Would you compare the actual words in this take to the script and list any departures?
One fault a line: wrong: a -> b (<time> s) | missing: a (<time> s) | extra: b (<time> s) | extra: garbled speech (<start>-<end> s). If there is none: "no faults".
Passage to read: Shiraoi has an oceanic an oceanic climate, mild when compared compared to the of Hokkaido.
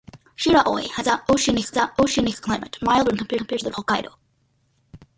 no faults